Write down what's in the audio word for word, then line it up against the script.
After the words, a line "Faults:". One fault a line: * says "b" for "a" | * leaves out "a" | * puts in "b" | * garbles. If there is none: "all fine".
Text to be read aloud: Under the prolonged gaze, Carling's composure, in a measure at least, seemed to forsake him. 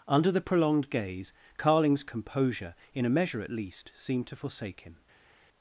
Under the prolonged gaze, Carling's composure, in a measure at least, seemed to forsake him.
Faults:
all fine